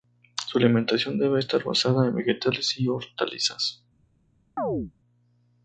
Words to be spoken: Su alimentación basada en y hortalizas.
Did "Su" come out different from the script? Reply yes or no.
no